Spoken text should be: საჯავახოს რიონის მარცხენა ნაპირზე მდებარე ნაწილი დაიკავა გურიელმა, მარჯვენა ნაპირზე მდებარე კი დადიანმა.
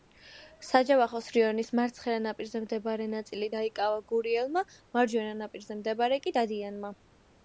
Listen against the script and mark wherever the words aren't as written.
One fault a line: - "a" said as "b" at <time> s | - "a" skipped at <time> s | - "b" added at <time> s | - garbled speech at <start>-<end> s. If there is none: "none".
none